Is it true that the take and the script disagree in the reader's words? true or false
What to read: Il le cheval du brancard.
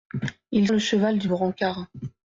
false